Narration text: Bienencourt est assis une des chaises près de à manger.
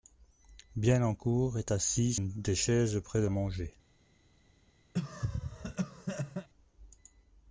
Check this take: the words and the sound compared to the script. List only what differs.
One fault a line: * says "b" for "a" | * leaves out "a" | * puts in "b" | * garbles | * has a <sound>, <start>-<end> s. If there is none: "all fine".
* has a cough, 4.9-6.5 s